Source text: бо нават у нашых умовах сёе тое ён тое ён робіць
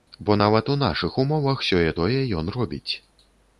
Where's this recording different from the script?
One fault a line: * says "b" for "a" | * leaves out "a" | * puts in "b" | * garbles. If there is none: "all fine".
* leaves out "тое ён"